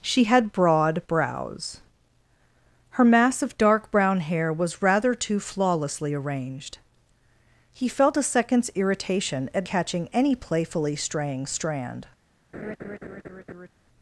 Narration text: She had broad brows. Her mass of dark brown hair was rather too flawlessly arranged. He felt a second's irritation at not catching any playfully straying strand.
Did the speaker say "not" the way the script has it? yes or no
no